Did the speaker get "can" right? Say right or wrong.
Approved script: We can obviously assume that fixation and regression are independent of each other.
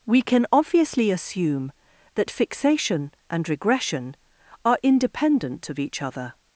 right